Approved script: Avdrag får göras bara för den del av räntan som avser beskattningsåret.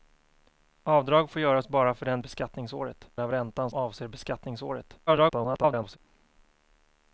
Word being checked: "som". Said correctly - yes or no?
no